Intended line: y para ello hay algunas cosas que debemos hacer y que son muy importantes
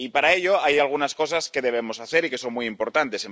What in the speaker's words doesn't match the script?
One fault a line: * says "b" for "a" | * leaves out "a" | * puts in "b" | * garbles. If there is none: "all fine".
all fine